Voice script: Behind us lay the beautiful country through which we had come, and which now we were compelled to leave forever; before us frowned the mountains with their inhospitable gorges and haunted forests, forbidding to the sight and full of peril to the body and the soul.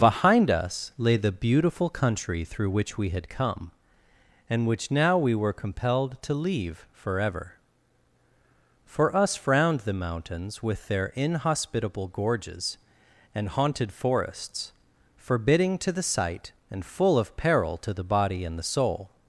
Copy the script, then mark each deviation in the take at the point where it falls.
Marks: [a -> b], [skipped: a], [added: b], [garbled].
Behind us lay the beautiful country through which we had come, and which now we were compelled to leave forever; [before -> for] us frowned the mountains with their inhospitable gorges and haunted forests, forbidding to the sight and full of peril to the body and the soul.